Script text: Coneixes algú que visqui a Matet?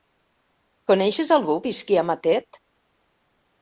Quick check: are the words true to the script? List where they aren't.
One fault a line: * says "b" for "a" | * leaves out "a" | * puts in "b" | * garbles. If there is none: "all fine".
* leaves out "que"